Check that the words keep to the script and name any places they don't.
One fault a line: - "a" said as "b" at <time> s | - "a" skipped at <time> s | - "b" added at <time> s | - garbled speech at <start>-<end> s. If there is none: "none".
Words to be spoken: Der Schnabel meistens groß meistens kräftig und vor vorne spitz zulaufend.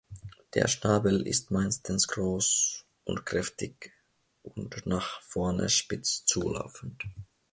- "ist" added at 1.3 s
- "meistens" said as "und" at 3.0 s
- "vor" said as "nach" at 4.9 s